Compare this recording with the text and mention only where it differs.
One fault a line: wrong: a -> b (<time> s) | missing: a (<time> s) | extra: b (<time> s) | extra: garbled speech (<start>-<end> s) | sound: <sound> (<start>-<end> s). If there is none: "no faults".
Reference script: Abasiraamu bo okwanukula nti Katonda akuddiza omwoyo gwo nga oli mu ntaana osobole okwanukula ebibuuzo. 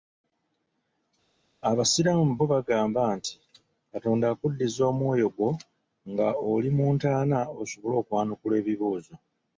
wrong: okwanukula -> bagamba (2.5 s)